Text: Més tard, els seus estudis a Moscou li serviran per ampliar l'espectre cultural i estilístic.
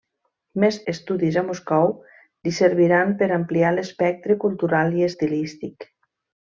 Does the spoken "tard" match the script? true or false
false